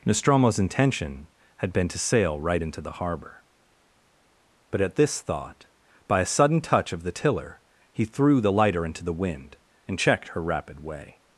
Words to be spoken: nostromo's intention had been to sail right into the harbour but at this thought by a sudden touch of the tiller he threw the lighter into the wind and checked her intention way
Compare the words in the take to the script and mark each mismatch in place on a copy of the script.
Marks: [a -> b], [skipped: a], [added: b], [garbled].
nostromo's intention had been to sail right into the harbour but at this thought by a sudden touch of the tiller he threw the lighter into the wind and checked her [intention -> rapid] way